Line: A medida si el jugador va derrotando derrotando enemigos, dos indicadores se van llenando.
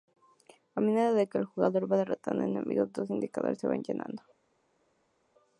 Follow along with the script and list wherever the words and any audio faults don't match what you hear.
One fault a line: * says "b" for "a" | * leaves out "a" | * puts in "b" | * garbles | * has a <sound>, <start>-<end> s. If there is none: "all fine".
* says "que" for "si"
* leaves out "derrotando"